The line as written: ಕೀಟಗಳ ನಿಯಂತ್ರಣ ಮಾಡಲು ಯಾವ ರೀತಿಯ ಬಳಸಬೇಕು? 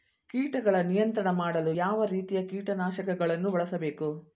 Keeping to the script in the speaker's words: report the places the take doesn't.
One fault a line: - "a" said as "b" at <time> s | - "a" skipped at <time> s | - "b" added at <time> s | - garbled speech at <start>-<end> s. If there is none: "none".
- "ಕೀಟನಾಶಕಗಳನ್ನು" added at 2.5 s